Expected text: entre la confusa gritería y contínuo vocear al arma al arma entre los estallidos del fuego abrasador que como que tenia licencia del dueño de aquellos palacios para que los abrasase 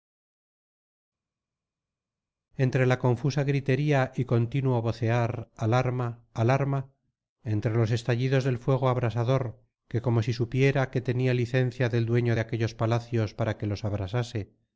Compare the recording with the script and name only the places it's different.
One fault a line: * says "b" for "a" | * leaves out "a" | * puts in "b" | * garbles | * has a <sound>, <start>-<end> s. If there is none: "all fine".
* puts in "si supiera"